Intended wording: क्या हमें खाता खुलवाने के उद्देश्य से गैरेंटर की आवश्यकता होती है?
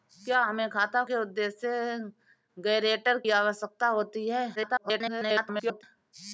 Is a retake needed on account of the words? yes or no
yes